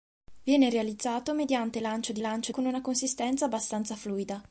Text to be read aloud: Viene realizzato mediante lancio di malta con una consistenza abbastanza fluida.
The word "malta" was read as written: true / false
false